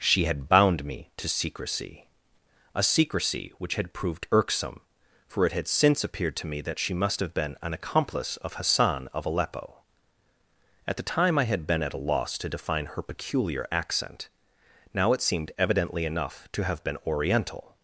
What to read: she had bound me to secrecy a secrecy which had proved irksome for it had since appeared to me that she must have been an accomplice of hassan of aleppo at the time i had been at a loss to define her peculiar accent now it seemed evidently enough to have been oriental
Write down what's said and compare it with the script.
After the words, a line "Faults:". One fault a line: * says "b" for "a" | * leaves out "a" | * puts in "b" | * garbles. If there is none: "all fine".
she had bound me to secrecy a secrecy which had proved irksome for it had since appeared to me that she must have been an accomplice of hassan of aleppo at the time i had been at a loss to define her peculiar accent now it seemed evidently enough to have been oriental
Faults:
all fine